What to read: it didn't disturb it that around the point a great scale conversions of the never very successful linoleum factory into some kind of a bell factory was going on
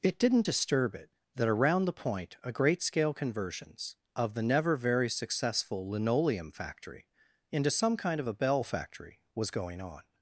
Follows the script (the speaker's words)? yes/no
yes